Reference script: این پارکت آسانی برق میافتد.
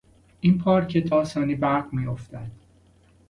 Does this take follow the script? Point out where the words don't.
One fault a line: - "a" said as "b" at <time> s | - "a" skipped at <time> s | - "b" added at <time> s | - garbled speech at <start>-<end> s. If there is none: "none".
none